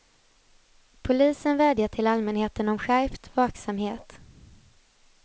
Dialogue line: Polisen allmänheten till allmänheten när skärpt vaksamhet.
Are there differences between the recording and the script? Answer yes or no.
yes